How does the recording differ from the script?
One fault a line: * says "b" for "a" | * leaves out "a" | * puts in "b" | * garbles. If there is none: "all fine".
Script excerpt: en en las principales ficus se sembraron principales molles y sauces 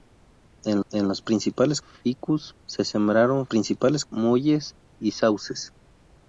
all fine